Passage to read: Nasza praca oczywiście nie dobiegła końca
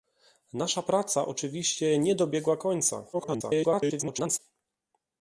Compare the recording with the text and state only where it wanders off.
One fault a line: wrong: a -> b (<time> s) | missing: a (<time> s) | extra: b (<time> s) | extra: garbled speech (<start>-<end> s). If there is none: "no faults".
extra: garbled speech (3.1-4.4 s)